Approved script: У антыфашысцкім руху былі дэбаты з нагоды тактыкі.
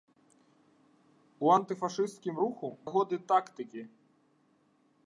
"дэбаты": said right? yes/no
no